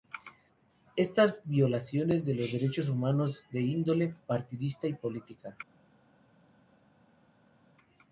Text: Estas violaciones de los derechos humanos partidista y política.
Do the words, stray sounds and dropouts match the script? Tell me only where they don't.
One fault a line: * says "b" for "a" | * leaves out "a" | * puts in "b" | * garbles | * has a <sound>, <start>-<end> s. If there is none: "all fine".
* puts in "de índole"